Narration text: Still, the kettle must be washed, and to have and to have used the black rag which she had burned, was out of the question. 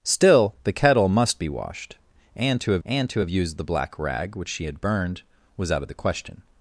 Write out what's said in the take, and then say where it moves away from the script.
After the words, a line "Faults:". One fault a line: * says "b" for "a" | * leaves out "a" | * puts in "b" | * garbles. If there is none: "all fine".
Still, the kettle must be washed, and to have and to have used the black rag which she had burned, was out of the question.
Faults:
all fine